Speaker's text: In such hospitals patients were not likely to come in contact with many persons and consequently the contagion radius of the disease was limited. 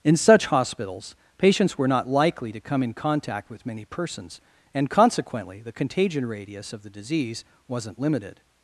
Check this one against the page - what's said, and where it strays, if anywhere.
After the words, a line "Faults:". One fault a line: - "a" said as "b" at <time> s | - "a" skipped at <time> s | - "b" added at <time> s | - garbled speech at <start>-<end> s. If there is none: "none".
In such hospitals patients were not likely to come in contact with many persons and consequently the contagion radius of the disease wasn't limited.
Faults:
- "was" said as "wasn't" at 7.7 s